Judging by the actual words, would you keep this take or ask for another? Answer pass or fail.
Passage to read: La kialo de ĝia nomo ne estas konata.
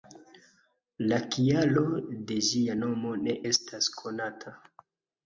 pass